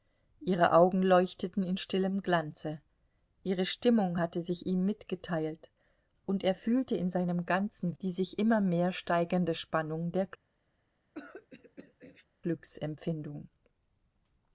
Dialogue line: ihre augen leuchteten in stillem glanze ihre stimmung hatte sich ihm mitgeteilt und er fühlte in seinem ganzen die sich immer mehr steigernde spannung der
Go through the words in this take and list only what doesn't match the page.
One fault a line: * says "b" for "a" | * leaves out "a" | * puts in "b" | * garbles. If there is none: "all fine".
all fine